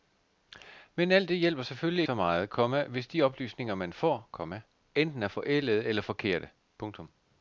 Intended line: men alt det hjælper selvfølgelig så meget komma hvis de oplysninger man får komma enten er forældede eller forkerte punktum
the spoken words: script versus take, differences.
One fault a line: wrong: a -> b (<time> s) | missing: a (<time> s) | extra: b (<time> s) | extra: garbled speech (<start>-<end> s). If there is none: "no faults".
no faults